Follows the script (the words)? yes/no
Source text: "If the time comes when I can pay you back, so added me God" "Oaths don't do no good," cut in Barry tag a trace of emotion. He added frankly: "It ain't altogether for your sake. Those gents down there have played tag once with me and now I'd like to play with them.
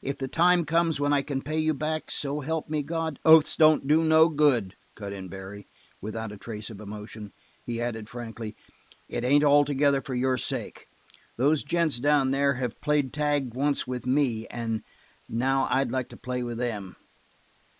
no